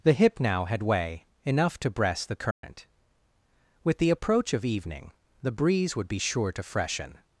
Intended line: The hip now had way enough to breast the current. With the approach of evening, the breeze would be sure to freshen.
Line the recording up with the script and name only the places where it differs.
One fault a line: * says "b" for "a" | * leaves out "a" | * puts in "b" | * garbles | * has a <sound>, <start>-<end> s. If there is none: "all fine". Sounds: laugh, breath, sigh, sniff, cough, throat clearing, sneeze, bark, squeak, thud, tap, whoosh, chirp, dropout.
* has a dropout, 2.5-2.6 s